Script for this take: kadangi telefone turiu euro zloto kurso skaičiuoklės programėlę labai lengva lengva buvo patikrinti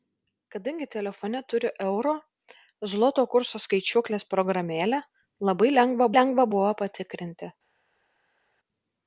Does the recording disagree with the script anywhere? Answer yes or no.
no